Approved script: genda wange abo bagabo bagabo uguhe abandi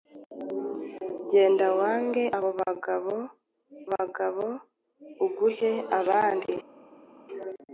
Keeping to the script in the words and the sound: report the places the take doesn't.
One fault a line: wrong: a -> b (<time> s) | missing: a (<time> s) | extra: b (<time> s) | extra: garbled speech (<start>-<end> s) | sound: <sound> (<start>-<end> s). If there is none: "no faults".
no faults